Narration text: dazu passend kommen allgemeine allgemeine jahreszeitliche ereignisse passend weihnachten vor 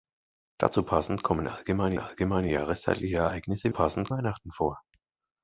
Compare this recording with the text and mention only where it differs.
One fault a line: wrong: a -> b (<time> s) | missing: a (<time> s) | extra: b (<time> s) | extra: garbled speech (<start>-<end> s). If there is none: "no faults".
no faults